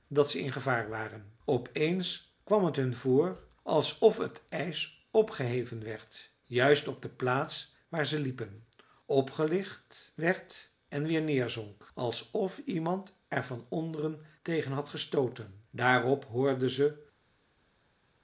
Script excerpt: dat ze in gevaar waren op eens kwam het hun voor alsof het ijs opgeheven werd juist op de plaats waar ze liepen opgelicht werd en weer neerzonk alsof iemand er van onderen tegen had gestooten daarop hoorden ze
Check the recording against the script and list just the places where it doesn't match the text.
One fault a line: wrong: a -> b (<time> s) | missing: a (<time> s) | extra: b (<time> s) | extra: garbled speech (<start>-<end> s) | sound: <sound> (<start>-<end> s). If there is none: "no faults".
no faults